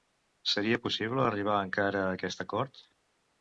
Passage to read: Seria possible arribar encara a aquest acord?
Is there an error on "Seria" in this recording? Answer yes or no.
no